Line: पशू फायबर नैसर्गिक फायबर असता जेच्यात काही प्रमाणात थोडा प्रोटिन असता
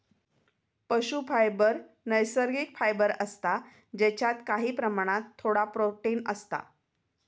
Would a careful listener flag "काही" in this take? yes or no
no